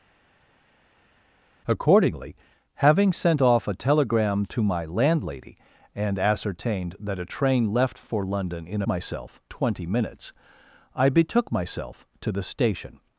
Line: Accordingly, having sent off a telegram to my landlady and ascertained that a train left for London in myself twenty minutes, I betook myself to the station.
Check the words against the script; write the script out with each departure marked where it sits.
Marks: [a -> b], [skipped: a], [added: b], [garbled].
Accordingly, having sent off a telegram to my landlady and ascertained that a train left for London in myself twenty minutes, I betook myself to the station.